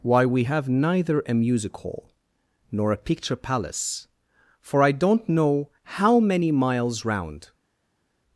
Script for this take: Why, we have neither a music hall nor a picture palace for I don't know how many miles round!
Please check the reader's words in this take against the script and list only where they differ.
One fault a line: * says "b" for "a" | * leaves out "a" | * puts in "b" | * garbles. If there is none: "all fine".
all fine